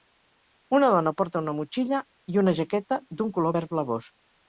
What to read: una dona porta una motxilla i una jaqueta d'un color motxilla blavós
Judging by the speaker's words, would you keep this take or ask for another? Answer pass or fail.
fail